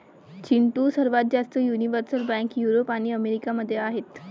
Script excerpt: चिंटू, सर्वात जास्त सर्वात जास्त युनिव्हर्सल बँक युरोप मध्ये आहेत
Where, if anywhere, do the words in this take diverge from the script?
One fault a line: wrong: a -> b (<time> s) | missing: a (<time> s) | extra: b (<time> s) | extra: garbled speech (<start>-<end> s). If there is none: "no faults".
missing: सर्वात जास्त (1.6 s)
extra: आणि अमेरिका (2.9 s)